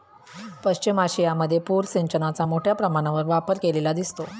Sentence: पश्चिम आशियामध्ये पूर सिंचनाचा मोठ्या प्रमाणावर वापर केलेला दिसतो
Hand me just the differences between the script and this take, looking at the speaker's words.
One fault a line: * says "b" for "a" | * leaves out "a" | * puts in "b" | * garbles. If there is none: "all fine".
all fine